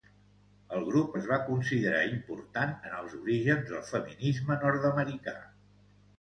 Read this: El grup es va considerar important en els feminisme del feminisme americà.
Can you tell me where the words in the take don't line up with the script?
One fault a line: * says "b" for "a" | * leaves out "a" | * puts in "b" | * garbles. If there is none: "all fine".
* says "orígens" for "feminisme"
* puts in "nord"